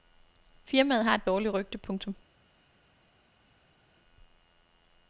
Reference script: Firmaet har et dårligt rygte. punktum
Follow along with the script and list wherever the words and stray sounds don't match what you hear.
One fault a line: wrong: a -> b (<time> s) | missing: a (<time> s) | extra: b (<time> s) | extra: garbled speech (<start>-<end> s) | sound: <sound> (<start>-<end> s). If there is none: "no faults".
no faults